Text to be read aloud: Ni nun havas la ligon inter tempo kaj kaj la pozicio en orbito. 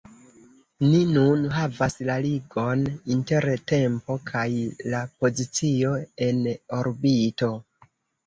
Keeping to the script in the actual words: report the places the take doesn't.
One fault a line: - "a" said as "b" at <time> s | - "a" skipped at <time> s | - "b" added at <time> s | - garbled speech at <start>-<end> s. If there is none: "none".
- "kaj" skipped at 4.5 s